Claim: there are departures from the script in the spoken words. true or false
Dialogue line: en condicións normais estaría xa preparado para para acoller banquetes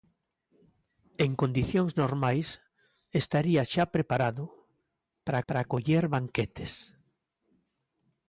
false